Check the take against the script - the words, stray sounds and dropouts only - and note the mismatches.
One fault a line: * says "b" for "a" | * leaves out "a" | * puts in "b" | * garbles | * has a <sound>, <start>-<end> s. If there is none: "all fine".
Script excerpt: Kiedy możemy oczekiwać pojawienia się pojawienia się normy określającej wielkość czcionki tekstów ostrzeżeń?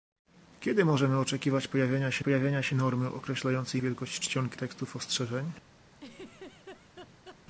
* has a laugh, 6.0-7.4 s